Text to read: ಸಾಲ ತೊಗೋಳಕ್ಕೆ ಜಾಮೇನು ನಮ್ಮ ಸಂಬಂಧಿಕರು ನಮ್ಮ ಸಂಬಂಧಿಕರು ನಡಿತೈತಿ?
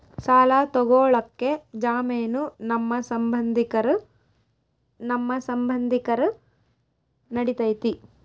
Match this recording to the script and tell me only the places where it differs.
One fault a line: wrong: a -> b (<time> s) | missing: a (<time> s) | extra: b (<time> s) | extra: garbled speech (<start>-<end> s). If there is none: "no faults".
no faults